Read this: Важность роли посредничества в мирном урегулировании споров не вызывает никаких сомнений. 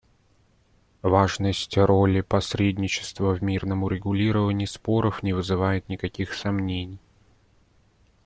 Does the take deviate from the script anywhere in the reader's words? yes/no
no